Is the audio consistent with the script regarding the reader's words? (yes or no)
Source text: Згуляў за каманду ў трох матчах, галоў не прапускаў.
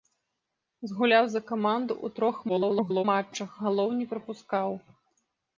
no